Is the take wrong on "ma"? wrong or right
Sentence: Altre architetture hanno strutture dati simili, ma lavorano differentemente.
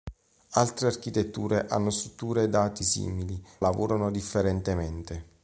wrong